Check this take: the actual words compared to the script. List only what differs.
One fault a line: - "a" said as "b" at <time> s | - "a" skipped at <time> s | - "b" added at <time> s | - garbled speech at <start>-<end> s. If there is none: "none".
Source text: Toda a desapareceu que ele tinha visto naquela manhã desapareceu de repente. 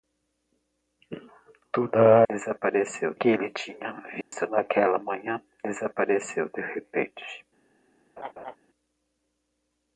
none